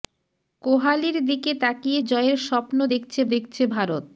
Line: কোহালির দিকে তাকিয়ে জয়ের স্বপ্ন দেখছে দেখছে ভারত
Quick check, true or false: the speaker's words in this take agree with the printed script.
true